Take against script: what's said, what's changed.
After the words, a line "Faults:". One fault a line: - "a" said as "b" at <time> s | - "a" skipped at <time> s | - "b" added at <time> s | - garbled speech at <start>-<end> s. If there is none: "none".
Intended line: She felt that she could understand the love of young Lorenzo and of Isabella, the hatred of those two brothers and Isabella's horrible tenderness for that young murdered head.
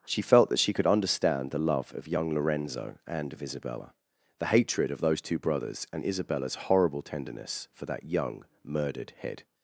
She felt that she could understand the love of young Lorenzo and of Isabella, the hatred of those two brothers and Isabella's horrible tenderness for that young murdered head.
Faults:
none